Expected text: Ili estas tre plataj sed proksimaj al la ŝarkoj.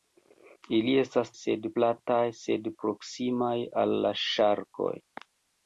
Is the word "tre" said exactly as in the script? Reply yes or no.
no